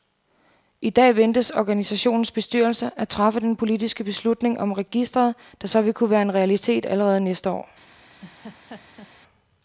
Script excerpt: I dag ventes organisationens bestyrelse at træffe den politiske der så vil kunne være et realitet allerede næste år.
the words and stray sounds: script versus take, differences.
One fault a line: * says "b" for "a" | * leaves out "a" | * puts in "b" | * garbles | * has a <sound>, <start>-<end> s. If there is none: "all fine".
* puts in "beslutning om registret"
* says "en" for "et"
* has a laugh, 8.2-9.1 s